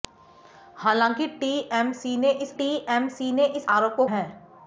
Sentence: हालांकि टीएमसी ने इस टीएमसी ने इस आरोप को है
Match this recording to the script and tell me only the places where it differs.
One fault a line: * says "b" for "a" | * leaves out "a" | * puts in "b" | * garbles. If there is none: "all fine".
all fine